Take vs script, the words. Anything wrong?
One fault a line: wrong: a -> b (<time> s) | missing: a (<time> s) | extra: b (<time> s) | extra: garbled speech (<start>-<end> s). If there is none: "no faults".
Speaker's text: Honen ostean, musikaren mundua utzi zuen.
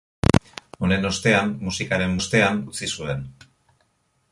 wrong: mundua -> ostean (2.2 s)